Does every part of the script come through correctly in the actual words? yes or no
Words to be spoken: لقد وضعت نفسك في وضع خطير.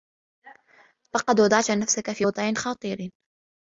yes